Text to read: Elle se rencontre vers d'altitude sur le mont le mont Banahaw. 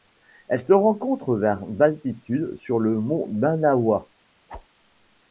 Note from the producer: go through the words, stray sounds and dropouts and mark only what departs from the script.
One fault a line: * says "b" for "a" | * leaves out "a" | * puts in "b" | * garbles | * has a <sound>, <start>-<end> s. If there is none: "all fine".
* leaves out "le mont"
* has a whoosh, 4.5-4.7 s